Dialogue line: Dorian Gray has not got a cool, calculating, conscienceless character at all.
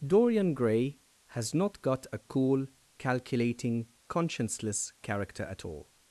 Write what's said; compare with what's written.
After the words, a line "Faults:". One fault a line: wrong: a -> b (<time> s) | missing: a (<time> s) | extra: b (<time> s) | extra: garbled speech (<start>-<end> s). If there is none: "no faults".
Dorian Gray has not got a cool, calculating, conscienceless character at all.
Faults:
no faults